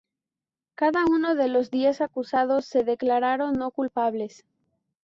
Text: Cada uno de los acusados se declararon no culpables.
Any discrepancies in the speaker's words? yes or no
yes